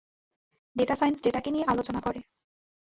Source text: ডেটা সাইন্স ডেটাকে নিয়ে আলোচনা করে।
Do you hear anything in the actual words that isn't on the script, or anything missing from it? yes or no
no